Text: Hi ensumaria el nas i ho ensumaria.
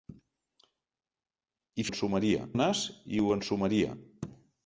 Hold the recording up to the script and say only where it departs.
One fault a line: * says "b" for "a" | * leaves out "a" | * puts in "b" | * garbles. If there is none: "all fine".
all fine